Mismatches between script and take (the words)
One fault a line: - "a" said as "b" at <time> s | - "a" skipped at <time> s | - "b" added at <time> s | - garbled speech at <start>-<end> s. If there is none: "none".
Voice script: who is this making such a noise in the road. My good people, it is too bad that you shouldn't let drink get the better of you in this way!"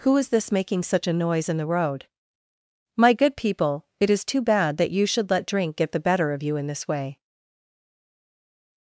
- "shouldn't" said as "should" at 5.0 s